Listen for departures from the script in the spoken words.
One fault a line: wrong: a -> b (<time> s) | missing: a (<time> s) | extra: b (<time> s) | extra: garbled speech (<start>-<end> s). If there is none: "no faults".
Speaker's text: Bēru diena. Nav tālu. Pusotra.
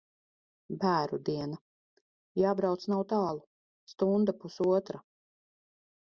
extra: Jābrauc (2.4 s)
extra: Stunda (3.9 s)